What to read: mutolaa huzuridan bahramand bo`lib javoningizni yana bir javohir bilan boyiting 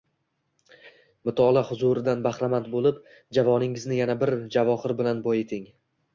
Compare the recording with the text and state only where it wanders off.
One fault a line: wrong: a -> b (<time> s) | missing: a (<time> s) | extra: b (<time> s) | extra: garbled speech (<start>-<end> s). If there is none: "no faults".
no faults